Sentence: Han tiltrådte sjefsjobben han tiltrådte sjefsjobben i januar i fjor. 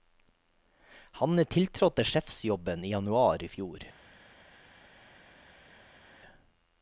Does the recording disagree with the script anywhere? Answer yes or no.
yes